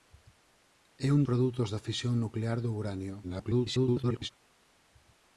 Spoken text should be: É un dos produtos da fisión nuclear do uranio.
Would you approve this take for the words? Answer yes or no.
no